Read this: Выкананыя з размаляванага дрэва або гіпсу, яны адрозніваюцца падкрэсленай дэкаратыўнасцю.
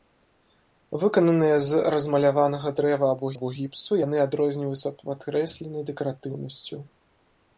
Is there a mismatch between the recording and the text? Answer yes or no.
yes